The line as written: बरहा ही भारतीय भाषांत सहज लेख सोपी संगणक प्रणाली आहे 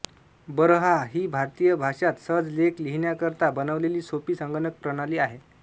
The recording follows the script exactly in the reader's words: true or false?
false